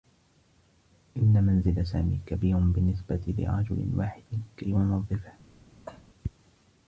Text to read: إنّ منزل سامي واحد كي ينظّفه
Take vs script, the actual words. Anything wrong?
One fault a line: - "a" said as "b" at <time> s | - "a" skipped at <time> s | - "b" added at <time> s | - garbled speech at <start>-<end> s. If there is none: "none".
- "كبير بالنّسبة لرجل" added at 2.2 s